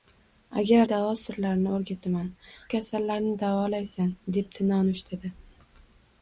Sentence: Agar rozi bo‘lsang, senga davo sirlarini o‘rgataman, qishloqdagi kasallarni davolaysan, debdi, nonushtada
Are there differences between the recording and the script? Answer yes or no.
yes